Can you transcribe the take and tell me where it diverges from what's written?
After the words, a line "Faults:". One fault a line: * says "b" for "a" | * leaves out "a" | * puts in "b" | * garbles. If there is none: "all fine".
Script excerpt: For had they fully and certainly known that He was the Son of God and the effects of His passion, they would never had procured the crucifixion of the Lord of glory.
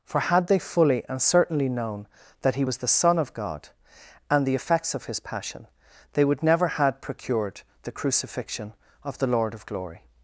For had they fully and certainly known that He was the Son of God and the effects of His passion, they would never had procured the crucifixion of the Lord of glory.
Faults:
all fine